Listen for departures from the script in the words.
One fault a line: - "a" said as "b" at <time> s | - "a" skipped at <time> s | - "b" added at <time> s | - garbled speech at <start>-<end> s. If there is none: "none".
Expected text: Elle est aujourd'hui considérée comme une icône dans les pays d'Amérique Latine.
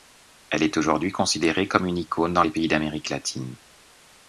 none